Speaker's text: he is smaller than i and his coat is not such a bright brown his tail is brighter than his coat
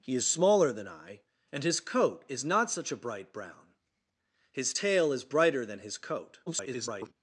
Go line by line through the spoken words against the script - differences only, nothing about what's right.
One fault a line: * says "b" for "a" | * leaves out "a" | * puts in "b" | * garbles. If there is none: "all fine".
* garbles